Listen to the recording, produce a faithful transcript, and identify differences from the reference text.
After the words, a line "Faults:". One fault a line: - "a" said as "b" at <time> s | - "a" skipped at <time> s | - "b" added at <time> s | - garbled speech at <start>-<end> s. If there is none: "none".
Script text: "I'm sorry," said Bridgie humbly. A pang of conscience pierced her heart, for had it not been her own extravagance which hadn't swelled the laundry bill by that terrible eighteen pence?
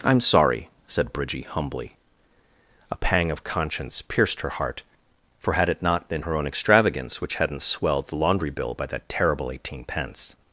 "I'm sorry," said Bridgie humbly. A pang of conscience pierced her heart, for had it not been her own extravagance which hadn't swelled the laundry bill by that terrible eighteen pence?
Faults:
none